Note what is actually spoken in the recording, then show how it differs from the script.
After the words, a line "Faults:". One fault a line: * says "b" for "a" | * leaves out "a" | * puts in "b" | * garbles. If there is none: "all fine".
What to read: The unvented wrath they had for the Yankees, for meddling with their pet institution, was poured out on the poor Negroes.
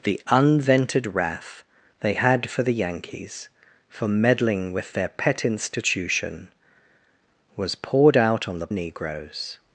The unvented wrath they had for the Yankees, for meddling with their pet institution, was poured out on the Negroes.
Faults:
* leaves out "poor"